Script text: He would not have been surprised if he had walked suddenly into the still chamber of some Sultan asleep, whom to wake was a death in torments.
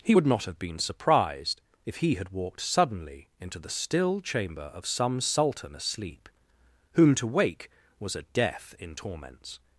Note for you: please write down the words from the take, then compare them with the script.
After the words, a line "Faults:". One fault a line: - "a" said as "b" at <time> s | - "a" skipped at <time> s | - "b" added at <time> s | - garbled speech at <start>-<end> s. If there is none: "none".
He would not have been surprised if he had walked suddenly into the still chamber of some Sultan asleep, whom to wake was a death in torments.
Faults:
none